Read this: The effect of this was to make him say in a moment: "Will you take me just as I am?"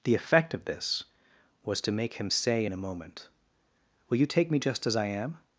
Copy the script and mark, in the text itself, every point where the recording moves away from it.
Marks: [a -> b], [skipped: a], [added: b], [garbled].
The effect of this was to make him say in a moment: "Will you take me just as I am?"